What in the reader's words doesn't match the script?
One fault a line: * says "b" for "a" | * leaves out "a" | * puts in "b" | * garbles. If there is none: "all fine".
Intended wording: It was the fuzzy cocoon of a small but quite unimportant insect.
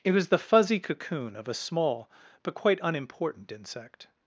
all fine